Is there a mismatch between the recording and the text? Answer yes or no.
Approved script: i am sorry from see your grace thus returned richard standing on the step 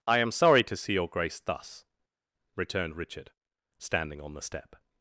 yes